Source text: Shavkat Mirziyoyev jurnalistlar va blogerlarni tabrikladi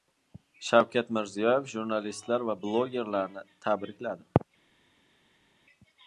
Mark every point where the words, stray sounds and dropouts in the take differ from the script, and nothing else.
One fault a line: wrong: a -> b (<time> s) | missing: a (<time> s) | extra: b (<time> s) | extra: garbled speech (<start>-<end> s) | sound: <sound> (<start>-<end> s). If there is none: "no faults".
no faults